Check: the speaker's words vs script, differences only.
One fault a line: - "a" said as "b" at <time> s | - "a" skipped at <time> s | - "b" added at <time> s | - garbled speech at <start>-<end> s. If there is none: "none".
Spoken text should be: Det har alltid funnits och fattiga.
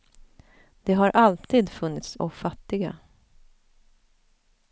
none